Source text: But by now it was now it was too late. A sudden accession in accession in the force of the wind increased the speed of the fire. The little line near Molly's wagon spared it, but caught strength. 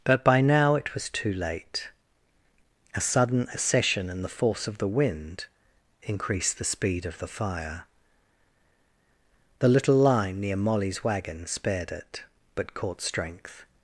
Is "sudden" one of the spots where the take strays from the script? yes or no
no